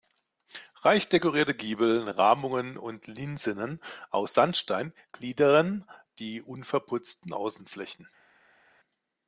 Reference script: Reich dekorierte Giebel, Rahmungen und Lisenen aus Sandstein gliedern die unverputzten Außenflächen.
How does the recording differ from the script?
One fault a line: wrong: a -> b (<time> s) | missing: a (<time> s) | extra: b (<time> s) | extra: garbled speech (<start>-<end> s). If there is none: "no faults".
no faults